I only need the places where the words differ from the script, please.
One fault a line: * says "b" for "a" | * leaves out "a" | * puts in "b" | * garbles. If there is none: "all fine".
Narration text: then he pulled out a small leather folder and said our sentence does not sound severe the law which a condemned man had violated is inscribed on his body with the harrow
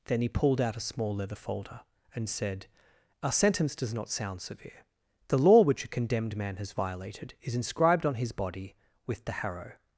* says "has" for "had"